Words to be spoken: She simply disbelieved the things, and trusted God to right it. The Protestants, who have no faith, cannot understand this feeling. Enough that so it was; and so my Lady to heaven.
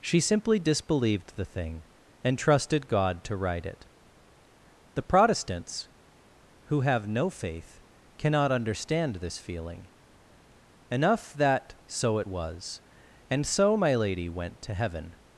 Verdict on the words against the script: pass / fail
fail